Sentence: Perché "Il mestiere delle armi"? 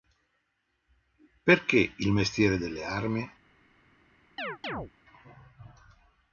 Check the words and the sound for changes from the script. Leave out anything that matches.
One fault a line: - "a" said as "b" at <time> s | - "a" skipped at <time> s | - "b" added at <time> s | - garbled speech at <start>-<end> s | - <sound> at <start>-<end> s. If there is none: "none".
- chirp at 4.4-4.9 s